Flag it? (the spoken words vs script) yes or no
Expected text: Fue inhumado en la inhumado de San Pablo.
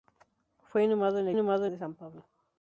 no